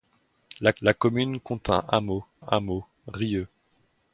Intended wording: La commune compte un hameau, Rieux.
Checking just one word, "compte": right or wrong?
right